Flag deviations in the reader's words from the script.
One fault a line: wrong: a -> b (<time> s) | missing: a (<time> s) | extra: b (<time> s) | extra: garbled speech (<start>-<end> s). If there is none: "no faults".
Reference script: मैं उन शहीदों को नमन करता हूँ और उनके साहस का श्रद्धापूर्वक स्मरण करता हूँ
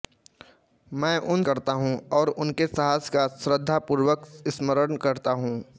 missing: शहीदों को नमन (1.4 s)